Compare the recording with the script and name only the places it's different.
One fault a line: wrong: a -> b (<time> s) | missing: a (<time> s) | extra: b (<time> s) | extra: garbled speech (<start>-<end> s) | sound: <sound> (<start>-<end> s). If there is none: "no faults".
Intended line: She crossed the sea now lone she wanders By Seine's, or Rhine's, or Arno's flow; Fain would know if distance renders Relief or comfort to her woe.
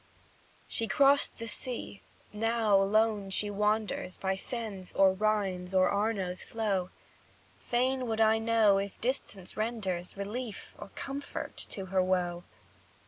extra: I (8.2 s)